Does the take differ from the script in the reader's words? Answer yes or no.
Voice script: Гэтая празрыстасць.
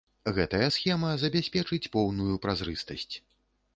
yes